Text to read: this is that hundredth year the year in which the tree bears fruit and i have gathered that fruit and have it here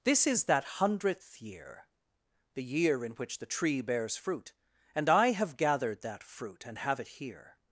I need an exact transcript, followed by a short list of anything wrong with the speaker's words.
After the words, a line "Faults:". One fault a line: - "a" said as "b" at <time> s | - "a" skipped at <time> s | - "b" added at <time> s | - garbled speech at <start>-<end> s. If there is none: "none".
this is that hundredth year the year in which the tree bears fruit and i have gathered that fruit and have it here
Faults:
none